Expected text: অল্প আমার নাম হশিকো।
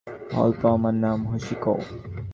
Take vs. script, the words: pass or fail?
pass